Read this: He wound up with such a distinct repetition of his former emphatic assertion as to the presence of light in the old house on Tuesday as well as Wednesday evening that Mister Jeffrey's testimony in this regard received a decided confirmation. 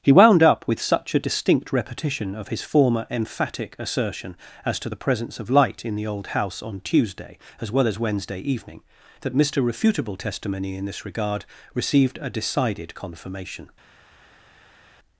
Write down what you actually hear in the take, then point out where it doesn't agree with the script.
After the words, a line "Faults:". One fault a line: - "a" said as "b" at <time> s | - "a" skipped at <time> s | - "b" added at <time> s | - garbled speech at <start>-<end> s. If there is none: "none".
He wound up with such a distinct repetition of his former emphatic assertion as to the presence of light in the old house on Tuesday as well as Wednesday evening that Mister Refutable testimony in this regard received a decided confirmation.
Faults:
- "Jeffrey's" said as "Refutable" at 9.6 s